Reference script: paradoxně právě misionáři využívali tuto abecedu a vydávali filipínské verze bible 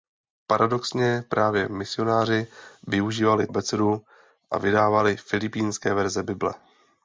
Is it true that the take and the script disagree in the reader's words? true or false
true